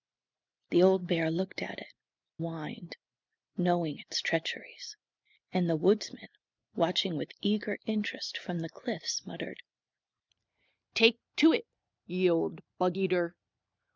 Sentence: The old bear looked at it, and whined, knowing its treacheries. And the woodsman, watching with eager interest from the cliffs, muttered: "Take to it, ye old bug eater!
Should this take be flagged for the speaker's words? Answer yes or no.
yes